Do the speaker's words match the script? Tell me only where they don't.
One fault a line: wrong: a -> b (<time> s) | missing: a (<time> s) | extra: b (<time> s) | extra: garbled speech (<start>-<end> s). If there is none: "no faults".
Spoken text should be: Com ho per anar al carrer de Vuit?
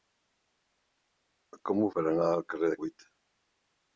no faults